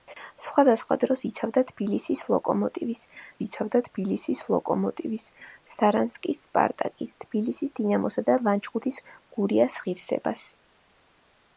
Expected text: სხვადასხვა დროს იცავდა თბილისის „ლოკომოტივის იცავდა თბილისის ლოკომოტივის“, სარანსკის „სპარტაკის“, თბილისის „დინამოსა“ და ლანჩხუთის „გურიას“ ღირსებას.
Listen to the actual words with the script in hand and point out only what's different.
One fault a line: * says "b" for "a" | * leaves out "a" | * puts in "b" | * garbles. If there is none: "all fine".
all fine